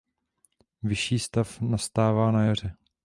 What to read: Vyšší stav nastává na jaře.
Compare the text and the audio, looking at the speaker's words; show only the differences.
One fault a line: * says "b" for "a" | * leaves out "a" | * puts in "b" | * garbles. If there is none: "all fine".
all fine